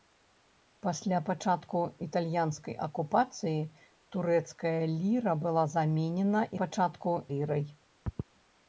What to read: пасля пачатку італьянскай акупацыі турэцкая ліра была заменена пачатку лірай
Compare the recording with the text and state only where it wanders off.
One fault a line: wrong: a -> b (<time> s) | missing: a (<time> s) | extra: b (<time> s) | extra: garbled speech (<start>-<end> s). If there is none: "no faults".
no faults